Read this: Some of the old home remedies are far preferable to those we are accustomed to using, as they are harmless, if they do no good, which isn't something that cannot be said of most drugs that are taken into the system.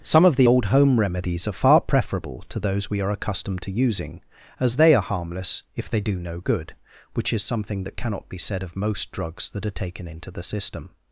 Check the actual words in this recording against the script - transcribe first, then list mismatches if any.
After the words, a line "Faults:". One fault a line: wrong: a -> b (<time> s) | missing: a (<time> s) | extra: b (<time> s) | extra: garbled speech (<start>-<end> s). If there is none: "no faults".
Some of the old home remedies are far preferable to those we are accustomed to using, as they are harmless, if they do no good, which is something that cannot be said of most drugs that are taken into the system.
Faults:
wrong: isn't -> is (7.3 s)